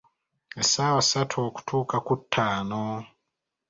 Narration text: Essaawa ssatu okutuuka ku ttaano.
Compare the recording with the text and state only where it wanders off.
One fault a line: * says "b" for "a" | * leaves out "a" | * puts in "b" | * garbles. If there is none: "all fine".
all fine